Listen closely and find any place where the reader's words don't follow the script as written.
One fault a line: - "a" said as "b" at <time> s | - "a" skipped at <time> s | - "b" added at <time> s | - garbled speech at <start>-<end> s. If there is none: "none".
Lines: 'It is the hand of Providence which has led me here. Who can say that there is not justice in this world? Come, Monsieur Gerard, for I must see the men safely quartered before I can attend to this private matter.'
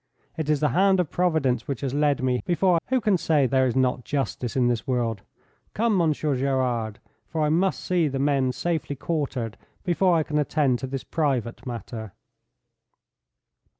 - "here" said as "before" at 2.4 s
- "that" skipped at 3.5 s